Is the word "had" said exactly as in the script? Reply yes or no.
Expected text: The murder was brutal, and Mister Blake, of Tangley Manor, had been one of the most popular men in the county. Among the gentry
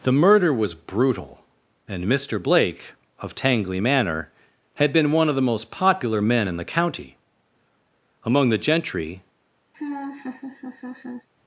yes